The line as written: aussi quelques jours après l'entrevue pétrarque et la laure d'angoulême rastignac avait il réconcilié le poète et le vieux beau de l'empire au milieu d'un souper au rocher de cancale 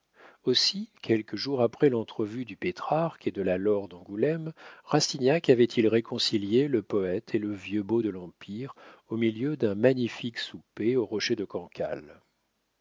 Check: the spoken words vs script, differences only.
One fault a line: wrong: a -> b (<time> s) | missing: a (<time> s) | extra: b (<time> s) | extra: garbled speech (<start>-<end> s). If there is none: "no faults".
extra: du (2.4 s)
extra: de (3.3 s)
extra: magnifique (9.7 s)